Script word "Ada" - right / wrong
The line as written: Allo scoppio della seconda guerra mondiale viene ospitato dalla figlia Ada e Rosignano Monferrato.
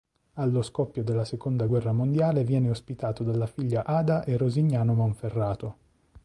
right